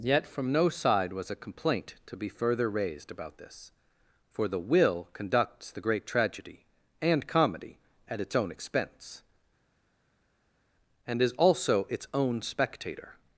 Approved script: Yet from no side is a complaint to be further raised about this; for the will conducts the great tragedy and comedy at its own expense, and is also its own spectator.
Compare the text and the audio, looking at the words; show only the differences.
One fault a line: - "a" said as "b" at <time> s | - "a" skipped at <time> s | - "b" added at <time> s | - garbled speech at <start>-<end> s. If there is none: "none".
- "is" said as "was" at 1.1 s